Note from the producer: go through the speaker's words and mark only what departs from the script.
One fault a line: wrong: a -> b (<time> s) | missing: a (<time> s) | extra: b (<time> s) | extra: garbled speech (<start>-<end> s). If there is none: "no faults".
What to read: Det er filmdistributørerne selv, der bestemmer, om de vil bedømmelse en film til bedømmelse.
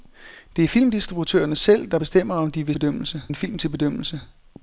no faults